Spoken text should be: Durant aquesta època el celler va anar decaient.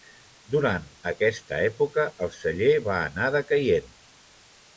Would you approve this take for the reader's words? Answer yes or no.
yes